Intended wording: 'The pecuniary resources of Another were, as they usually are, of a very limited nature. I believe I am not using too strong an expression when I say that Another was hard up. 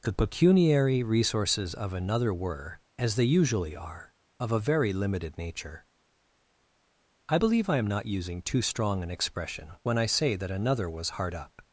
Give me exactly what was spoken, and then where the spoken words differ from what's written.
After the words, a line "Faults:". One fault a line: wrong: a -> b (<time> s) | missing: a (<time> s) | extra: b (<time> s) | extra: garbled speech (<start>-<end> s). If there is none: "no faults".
'The pecuniary resources of Another were, as they usually are, of a very limited nature. I believe I am not using too strong an expression when I say that Another was hard up.
Faults:
no faults